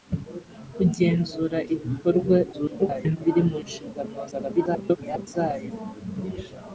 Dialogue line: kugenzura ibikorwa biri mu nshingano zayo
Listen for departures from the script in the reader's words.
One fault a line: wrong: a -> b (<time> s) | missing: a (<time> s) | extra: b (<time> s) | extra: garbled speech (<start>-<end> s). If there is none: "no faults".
extra: garbled speech (2.5-3.2 s)
extra: garbled speech (4.3-5.3 s)